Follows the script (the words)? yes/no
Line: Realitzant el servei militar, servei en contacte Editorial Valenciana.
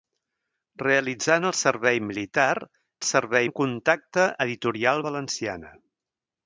yes